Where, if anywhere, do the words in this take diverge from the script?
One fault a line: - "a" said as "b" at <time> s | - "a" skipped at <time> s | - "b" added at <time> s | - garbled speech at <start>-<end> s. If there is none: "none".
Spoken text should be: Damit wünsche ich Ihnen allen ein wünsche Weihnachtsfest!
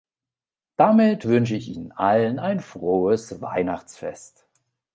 - "wünsche" said as "frohes" at 2.6 s